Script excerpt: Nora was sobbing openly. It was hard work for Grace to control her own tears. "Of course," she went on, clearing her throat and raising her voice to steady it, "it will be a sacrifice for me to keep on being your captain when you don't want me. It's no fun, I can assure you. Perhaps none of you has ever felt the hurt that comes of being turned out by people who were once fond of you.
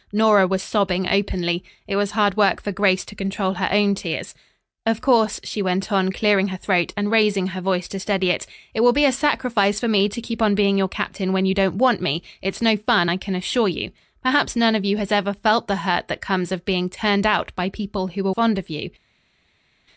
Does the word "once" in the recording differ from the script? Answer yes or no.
yes